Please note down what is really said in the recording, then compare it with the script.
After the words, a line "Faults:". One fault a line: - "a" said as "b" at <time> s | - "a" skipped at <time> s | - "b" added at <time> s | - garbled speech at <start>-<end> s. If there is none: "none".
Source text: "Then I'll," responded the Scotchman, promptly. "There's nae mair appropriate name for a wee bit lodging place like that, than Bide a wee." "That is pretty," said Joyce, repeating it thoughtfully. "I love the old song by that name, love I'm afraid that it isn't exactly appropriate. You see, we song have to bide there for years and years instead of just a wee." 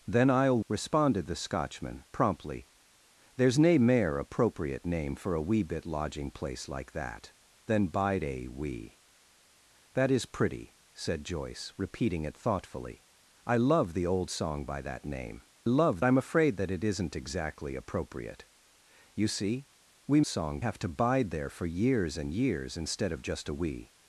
"Then I'll," responded the Scotchman, promptly. "There's nae mair appropriate name for a wee bit lodging place like that, than Bide a wee." "That is pretty," said Joyce, repeating it thoughtfully. "I love the old song by that name, love I'm afraid that it isn't exactly appropriate. You see, we song have to bide there for years and years instead of just a wee."
Faults:
none